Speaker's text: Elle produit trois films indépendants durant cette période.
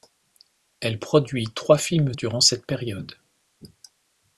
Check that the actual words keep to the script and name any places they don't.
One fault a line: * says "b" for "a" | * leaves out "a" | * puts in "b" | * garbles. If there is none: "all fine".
* leaves out "indépendants"